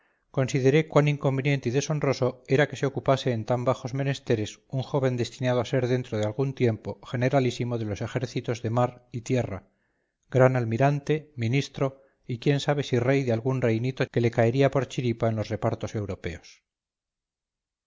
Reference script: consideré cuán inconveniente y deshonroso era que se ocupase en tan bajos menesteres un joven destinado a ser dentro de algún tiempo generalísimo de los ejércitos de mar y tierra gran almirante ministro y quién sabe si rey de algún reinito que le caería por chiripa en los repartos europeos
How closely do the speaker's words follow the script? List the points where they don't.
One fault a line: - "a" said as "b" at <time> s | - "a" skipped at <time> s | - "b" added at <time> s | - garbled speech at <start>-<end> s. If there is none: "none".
none